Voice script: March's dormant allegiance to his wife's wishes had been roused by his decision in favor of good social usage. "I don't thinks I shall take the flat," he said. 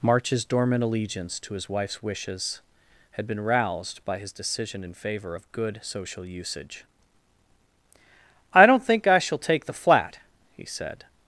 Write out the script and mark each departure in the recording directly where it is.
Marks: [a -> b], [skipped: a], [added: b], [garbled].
March's dormant allegiance to his wife's wishes had been roused by his decision in favor of good social usage. "I don't [thinks -> think] I shall take the flat," he said.